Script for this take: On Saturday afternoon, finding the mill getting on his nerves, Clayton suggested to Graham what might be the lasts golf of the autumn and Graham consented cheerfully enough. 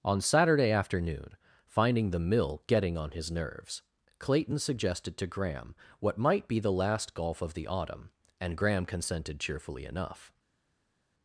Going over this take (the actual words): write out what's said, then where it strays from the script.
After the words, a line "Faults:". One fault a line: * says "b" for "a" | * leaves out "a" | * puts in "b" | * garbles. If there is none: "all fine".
On Saturday afternoon, finding the mill getting on his nerves, Clayton suggested to Graham what might be the last golf of the autumn and Graham consented cheerfully enough.
Faults:
* says "last" for "lasts"